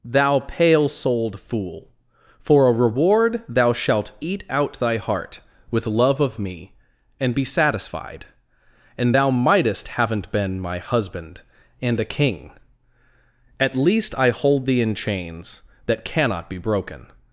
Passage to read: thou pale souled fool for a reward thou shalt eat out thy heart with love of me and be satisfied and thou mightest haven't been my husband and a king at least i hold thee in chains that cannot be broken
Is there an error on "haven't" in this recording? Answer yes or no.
no